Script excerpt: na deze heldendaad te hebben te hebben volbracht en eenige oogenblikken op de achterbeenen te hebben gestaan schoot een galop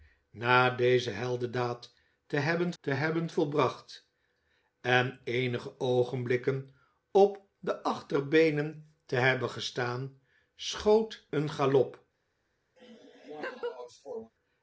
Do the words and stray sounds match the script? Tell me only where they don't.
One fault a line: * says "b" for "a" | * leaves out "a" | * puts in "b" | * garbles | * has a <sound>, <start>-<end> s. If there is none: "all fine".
* has a laugh, 12.8-14.3 s